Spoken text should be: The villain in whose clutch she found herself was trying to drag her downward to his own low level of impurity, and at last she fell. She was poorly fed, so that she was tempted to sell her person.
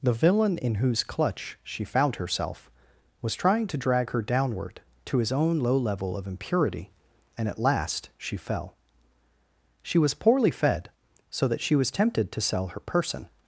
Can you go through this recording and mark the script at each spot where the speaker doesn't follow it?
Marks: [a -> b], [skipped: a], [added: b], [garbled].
The villain in whose clutch she found herself was trying to drag her downward to his own low level of impurity, and at last she fell. She was poorly fed, so that she was tempted to sell her person.